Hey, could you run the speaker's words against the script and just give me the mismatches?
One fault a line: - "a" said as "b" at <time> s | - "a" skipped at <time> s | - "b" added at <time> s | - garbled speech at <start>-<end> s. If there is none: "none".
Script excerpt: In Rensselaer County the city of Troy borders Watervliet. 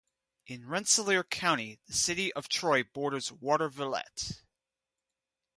none